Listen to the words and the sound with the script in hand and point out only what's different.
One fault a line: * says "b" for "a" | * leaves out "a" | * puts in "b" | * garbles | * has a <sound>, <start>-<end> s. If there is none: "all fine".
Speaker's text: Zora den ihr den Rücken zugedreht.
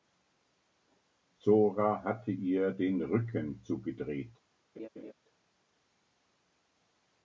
* says "hatte" for "den"
* has a laugh, 4.8-5.1 s